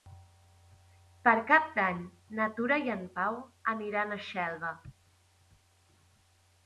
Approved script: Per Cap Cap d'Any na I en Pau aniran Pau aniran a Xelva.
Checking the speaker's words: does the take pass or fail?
fail